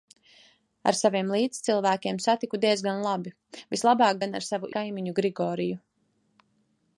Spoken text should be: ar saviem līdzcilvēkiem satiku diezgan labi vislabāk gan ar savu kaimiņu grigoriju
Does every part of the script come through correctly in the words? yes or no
yes